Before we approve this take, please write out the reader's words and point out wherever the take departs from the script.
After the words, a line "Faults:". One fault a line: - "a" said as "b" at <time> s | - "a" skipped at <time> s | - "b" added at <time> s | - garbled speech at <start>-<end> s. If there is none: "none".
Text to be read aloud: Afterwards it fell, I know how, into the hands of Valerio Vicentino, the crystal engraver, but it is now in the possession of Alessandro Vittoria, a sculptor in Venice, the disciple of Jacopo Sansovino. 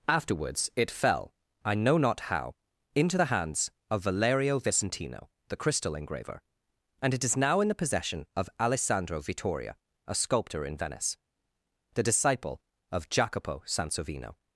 Afterwards it fell, I know not how, into the hands of Valerio Vicentino, the crystal engraver, and it is now in the possession of Alessandro Vittoria, a sculptor in Venice, the disciple of Jacopo Sansovino.
Faults:
- "not" added at 2.0 s
- "but" said as "and" at 7.0 s